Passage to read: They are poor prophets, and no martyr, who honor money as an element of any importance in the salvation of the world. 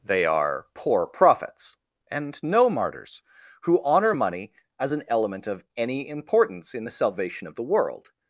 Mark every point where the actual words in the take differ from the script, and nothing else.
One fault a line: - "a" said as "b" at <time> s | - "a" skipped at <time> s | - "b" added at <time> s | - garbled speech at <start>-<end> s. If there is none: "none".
- "martyr" said as "martyrs" at 2.7 s